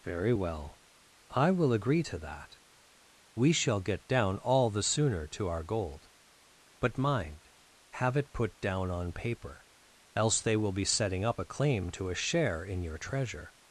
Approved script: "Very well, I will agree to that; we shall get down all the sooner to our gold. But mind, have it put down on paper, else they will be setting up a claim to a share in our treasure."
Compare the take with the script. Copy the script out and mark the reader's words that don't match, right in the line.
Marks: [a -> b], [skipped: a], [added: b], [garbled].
"Very well, I will agree to that; we shall get down all the sooner to our gold. But mind, have it put down on paper, else they will be setting up a claim to a share in [our -> your] treasure."